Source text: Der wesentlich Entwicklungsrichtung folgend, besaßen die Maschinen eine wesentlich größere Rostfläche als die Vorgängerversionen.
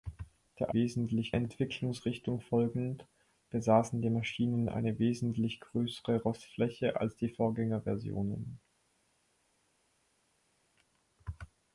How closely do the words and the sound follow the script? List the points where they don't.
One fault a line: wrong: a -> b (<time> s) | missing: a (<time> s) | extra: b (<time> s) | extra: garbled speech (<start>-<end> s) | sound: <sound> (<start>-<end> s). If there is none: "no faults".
no faults